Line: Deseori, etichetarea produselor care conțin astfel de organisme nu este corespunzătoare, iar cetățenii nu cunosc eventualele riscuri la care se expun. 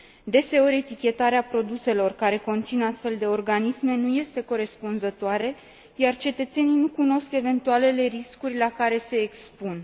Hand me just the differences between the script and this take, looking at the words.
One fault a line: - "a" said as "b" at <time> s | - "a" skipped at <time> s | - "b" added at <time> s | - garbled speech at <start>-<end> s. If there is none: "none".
none